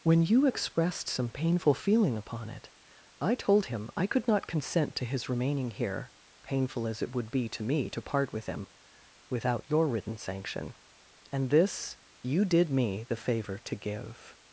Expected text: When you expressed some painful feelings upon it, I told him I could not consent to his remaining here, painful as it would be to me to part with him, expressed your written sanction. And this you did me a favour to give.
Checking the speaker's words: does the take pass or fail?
fail